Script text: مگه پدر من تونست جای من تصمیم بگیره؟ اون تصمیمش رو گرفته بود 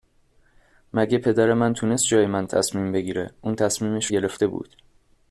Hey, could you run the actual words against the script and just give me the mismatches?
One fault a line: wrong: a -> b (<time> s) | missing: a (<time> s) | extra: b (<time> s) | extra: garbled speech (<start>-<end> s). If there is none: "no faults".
missing: رو (4.1 s)